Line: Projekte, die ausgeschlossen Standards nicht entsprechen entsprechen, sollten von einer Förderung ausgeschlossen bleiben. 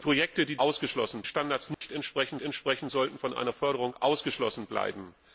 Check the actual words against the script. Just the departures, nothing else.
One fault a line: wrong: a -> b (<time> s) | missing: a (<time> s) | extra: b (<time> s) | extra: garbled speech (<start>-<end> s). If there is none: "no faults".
no faults